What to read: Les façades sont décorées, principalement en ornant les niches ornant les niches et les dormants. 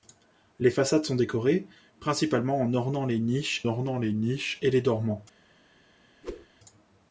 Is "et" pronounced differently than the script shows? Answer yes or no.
no